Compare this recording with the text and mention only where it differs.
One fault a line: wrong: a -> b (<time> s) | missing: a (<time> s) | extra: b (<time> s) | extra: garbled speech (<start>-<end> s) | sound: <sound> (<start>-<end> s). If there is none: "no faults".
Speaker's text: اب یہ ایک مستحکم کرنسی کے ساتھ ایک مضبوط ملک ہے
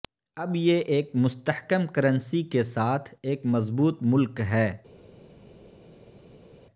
no faults